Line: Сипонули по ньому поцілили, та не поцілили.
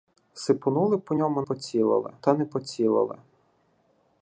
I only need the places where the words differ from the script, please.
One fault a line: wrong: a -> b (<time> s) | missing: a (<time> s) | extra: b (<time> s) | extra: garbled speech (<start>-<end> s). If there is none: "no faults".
no faults